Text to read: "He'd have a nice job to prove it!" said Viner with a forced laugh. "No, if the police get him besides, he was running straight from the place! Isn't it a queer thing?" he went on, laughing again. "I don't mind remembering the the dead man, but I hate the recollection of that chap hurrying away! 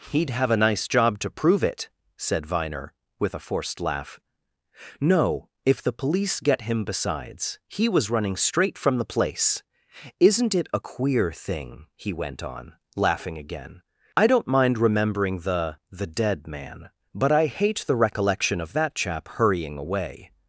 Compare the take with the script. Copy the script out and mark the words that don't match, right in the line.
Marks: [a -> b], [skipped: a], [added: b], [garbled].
"He'd have a nice job to prove it!" said Viner with a forced laugh. "No, if the police get him besides, he was running straight from the place! Isn't it a queer thing?" he went on, laughing again. "I don't mind remembering the the dead man, but I hate the recollection of that chap hurrying away!